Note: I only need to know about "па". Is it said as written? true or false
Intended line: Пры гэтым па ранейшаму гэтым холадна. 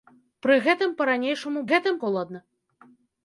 true